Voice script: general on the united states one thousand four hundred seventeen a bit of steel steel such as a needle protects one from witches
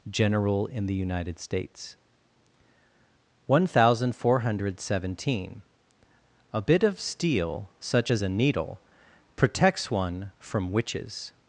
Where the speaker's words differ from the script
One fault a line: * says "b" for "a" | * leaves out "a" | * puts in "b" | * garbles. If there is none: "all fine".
* says "in" for "on"
* leaves out "steel"